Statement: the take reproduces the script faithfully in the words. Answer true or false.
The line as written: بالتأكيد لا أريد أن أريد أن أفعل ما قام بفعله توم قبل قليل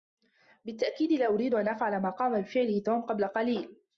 false